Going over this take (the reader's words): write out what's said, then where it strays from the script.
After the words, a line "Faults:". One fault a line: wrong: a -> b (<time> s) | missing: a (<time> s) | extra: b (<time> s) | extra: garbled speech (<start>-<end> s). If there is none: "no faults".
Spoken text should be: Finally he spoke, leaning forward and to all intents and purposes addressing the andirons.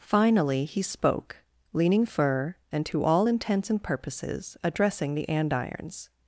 Finally he spoke, leaning fur and to all intents and purposes addressing the andirons.
Faults:
wrong: forward -> fur (2.0 s)